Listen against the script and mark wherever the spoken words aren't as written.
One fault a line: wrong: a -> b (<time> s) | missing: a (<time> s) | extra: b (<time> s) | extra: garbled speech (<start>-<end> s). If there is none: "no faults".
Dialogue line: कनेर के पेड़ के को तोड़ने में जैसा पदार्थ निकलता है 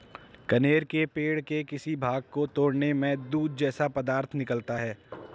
extra: किसी भाग (1.6 s)
extra: दूध (3.3 s)